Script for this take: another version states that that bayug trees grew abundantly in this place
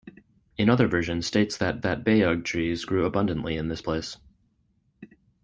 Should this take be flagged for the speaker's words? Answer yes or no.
no